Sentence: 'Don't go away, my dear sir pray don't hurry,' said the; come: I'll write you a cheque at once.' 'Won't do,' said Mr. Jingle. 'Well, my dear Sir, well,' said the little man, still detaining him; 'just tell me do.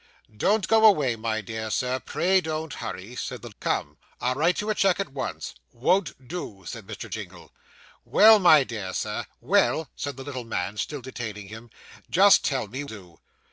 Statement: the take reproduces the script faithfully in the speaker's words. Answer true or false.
true